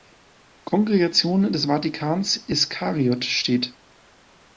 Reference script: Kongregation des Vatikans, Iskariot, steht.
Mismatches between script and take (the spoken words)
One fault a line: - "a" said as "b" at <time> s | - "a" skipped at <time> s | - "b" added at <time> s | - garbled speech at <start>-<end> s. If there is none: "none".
none